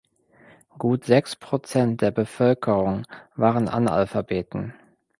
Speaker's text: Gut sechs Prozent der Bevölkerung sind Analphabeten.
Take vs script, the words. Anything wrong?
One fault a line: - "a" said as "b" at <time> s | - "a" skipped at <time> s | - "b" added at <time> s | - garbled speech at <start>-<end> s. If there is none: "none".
- "sind" said as "waren" at 3.4 s